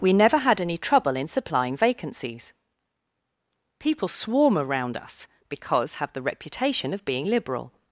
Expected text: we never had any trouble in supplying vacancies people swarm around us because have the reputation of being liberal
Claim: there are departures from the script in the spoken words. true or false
false